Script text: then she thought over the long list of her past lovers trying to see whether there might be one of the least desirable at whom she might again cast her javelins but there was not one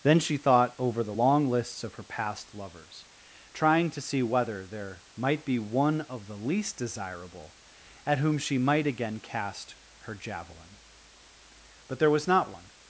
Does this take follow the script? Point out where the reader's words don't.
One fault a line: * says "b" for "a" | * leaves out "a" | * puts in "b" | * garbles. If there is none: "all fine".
* says "lists" for "list"
* says "javelin" for "javelins"